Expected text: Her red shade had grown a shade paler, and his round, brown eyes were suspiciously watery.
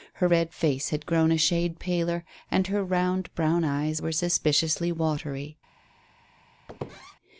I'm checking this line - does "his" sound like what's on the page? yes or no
no